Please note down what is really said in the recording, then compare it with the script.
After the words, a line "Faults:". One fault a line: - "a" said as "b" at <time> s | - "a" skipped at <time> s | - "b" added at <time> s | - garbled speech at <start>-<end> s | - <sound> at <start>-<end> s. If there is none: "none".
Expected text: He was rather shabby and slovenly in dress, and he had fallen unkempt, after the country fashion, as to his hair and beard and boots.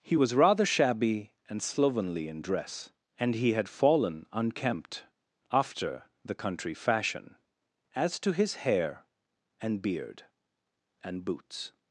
He was rather shabby and slovenly in dress, and he had fallen unkempt, after the country fashion, as to his hair and beard and boots.
Faults:
none